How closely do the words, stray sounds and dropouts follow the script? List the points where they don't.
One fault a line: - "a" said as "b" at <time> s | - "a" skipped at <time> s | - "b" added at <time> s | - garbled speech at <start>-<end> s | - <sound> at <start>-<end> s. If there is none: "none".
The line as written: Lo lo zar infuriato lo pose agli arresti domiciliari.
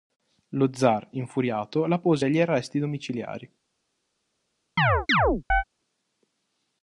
- "lo" skipped at 0.7 s
- "lo" said as "la" at 1.9 s
- chirp at 4.8-5.6 s